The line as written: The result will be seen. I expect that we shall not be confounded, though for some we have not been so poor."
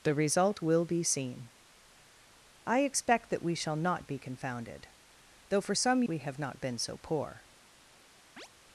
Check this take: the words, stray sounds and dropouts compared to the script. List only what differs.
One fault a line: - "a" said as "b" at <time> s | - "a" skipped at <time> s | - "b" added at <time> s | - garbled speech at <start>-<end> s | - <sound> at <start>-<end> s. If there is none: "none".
- chirp at 8.4-8.5 s